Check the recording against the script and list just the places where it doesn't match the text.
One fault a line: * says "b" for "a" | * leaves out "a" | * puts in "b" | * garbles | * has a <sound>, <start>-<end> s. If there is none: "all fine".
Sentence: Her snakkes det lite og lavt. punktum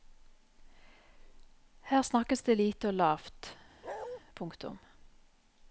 * has a bark, 3.8-4.2 s